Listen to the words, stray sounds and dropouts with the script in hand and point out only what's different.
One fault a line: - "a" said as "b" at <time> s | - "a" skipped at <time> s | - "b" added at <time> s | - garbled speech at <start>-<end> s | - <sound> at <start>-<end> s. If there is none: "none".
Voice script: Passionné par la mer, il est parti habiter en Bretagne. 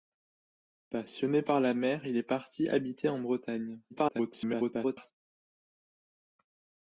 - garbled speech at 3.9-5.1 s